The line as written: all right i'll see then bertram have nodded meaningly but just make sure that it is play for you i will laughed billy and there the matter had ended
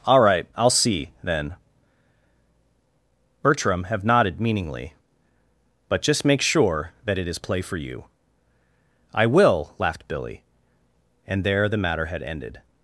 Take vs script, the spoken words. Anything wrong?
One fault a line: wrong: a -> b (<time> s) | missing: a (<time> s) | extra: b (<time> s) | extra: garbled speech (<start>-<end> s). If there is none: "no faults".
no faults